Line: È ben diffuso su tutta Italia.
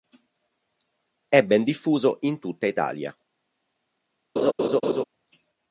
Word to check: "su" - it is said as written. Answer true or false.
false